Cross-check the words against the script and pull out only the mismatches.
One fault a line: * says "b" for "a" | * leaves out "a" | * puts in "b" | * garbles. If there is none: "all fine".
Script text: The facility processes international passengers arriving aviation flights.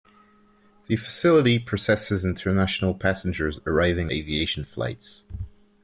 all fine